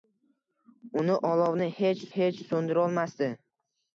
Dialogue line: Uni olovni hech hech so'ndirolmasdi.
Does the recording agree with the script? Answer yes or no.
yes